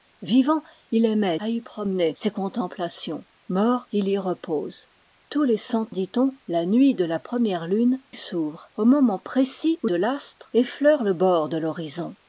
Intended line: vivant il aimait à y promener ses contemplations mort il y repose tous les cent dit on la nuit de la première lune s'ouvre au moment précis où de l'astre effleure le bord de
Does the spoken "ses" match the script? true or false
true